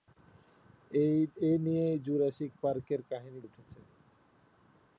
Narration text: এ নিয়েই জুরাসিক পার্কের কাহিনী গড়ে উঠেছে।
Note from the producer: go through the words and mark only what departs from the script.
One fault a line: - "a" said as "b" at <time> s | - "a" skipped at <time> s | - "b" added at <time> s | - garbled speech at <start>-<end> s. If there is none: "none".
- "গড়ে" skipped at 3.4 s